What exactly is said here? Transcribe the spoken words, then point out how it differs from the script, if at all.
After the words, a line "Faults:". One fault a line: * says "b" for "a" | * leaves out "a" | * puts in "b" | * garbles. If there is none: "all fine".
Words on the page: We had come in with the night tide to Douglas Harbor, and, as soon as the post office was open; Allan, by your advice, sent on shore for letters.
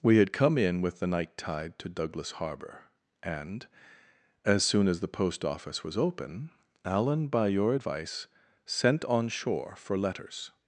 We had come in with the night tide to Douglas Harbor, and, as soon as the post office was open; Allan, by your advice, sent on shore for letters.
Faults:
all fine